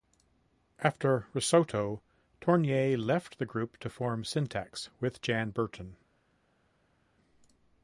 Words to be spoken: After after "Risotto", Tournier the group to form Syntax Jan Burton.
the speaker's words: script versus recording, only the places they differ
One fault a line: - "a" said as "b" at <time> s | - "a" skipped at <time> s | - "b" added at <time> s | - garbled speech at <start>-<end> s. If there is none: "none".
- "after" skipped at 1.3 s
- "left" added at 3.0 s
- "with" added at 5.0 s